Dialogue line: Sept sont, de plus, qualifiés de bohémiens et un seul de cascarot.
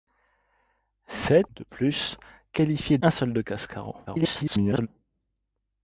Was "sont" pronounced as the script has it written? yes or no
no